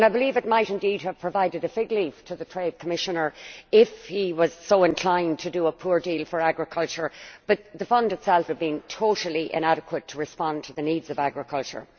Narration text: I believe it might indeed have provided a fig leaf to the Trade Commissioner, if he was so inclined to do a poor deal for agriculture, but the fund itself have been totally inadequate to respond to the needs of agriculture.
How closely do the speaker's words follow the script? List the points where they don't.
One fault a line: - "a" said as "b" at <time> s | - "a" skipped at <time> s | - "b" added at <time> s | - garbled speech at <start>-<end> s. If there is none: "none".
none